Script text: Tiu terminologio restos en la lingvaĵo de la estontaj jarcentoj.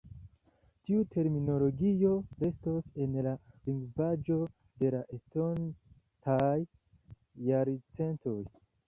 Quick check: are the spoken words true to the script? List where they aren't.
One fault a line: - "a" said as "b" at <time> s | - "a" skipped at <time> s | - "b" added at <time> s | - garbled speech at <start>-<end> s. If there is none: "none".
none